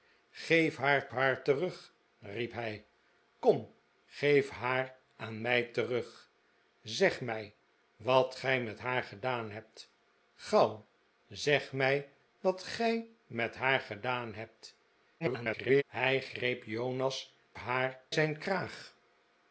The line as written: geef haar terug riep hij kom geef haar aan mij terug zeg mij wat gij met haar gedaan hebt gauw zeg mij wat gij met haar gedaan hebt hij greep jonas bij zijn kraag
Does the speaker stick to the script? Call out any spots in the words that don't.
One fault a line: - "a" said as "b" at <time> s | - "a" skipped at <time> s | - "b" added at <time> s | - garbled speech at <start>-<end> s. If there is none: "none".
- "haar" added at 1.1 s
- garbled speech at 15.2-15.8 s
- "bij" said as "haar" at 17.5 s